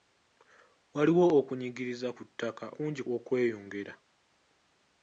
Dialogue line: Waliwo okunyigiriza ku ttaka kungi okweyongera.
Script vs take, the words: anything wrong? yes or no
no